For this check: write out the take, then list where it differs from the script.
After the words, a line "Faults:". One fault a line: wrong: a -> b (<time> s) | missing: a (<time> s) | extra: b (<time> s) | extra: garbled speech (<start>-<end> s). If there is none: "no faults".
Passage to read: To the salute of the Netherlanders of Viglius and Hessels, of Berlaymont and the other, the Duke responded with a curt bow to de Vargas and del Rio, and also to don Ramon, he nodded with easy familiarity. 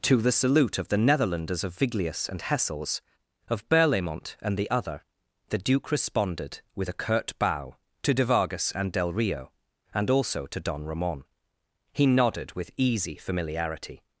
To the salute of the Netherlanders of Viglius and Hessels, of Berlaymont and the other, the Duke responded with a curt bow to de Vargas and del Rio, and also to don Ramon, he nodded with easy familiarity.
Faults:
no faults